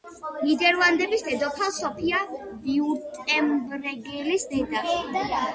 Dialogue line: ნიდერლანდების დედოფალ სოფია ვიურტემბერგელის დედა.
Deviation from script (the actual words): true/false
false